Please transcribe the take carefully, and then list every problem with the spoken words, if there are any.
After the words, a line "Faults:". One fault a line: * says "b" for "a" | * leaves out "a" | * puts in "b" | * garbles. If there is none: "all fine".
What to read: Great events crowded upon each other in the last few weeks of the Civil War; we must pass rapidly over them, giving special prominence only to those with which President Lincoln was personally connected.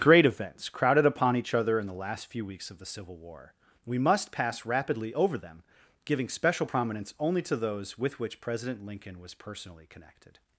Great events crowded upon each other in the last few weeks of the Civil War; we must pass rapidly over them, giving special prominence only to those with which President Lincoln was personally connected.
Faults:
all fine